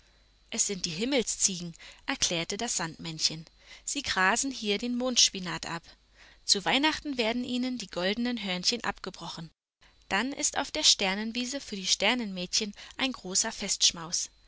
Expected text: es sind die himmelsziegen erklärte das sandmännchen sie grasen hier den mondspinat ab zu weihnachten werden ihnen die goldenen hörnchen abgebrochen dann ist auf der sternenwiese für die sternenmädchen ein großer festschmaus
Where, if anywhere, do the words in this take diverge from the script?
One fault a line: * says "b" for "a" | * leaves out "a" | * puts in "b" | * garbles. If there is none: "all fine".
all fine